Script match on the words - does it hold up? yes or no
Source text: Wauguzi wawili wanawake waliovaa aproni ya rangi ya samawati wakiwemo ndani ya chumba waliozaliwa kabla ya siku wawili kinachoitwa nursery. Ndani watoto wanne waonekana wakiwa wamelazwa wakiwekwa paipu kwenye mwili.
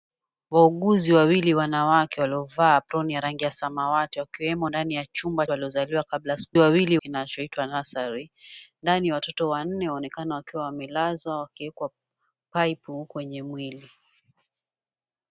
yes